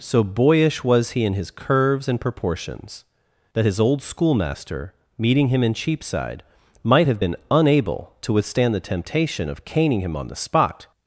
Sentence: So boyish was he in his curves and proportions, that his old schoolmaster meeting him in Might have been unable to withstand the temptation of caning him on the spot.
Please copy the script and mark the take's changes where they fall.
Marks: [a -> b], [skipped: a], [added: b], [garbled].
So boyish was he in his curves and proportions, that his old schoolmaster meeting him in [added: Cheapside] Might have been unable to withstand the temptation of caning him on the spot.